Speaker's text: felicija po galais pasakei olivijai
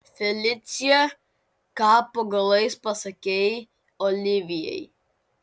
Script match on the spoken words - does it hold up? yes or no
no